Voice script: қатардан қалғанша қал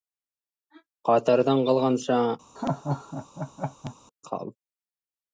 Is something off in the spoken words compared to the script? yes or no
no